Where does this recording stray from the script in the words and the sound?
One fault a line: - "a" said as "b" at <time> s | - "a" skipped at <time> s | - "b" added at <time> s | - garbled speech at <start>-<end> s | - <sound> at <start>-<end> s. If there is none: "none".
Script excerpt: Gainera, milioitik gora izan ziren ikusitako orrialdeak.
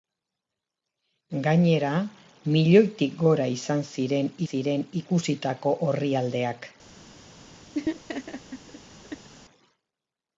- "ziren" added at 4.5 s
- laugh at 7.7-9.3 s